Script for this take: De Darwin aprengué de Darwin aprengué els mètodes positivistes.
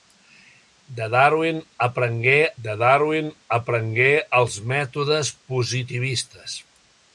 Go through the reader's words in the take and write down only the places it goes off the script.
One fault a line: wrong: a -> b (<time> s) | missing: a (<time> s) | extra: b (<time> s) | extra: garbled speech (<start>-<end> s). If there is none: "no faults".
no faults